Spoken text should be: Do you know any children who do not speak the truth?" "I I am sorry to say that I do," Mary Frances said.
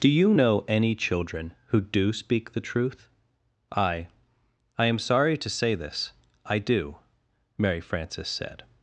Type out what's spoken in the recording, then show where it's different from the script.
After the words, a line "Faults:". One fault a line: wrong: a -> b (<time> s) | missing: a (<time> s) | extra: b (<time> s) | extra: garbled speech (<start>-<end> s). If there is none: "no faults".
Do you know any children who do speak the truth?" "I I am sorry to say this I do," Mary Frances said.
Faults:
missing: not (2.1 s)
wrong: that -> this (5.8 s)